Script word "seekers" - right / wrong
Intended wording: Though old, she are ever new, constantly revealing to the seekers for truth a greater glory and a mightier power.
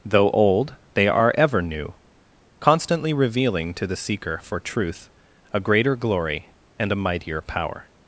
wrong